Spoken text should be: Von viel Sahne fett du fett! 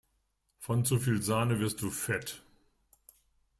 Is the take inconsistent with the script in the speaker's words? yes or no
yes